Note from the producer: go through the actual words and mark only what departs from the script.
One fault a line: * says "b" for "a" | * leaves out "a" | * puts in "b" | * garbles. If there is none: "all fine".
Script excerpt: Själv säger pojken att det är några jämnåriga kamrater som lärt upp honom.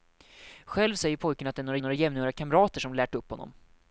* puts in "några"